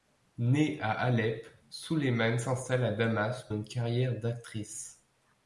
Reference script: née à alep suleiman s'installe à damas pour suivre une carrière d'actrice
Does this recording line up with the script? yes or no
no